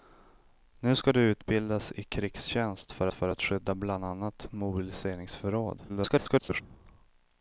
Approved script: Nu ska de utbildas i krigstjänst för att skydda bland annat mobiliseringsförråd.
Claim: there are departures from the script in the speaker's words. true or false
true